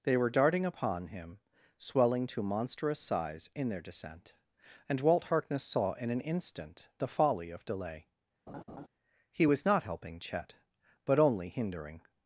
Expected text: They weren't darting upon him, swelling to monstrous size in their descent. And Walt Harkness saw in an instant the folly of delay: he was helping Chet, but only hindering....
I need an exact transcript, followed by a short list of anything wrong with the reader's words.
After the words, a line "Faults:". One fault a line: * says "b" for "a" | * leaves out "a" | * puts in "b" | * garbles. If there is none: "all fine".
They were darting upon him, swelling to monstrous size in their descent. And Walt Harkness saw in an instant the folly of delay: he was not helping Chet, but only hindering....
Faults:
* says "were" for "weren't"
* puts in "not"